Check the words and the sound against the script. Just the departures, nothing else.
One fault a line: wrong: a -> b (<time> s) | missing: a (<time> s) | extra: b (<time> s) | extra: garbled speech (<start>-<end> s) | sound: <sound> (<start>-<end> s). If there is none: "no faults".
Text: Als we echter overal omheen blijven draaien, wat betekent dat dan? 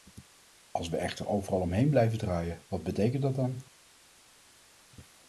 no faults